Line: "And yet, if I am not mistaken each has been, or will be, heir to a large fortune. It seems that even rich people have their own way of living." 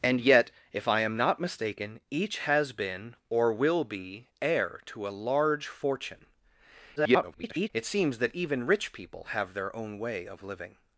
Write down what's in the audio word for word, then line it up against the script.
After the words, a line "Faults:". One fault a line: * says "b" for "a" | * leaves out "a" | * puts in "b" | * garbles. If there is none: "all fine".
"And yet, if I am not mistaken each has been, or will be, heir to a large fortune. [garbled] It seems that even rich people have their own way of living."
Faults:
* garbles